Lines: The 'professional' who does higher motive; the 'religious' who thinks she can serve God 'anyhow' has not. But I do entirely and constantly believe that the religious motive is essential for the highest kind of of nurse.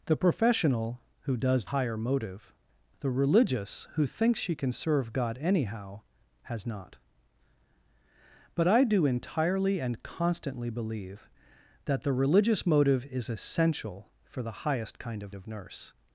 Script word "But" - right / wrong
right